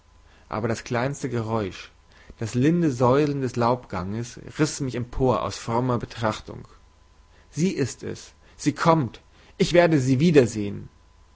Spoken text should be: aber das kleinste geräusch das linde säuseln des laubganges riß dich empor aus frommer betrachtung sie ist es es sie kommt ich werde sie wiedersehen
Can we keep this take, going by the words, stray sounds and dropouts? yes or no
no